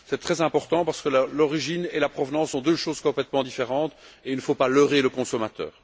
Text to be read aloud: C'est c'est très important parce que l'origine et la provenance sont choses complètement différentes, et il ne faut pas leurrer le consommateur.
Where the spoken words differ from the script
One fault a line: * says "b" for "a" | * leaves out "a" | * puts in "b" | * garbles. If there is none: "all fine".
* leaves out "c'est"
* puts in "deux"